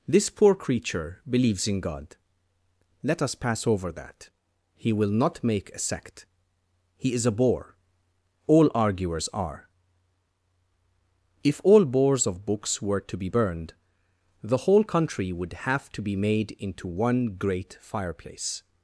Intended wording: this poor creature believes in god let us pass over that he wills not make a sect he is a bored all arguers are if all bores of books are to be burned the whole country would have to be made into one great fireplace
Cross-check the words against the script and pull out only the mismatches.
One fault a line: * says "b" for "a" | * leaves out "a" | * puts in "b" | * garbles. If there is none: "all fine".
* says "will" for "wills"
* says "bore" for "bored"
* says "were" for "are"